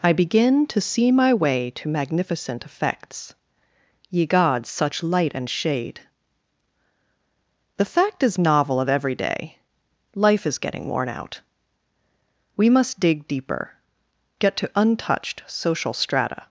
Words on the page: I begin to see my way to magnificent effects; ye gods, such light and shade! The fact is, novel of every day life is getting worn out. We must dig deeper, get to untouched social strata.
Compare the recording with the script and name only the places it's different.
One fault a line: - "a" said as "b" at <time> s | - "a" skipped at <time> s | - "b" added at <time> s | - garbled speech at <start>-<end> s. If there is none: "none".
none